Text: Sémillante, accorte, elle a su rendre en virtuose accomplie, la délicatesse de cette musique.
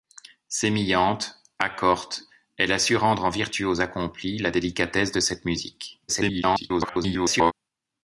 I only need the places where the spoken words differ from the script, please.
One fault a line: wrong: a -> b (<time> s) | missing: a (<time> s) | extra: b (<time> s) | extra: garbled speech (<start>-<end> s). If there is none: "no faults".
extra: garbled speech (6.1-7.5 s)